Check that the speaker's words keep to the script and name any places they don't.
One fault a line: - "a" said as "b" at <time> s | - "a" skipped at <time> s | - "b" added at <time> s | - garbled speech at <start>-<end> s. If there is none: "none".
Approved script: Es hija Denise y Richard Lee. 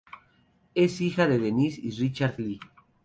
- "de" added at 1.3 s